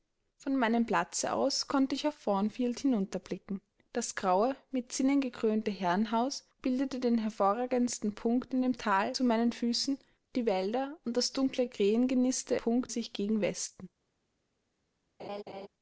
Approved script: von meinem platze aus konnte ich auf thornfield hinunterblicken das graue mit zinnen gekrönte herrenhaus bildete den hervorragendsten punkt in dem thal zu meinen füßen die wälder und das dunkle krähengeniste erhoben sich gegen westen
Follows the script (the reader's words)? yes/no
no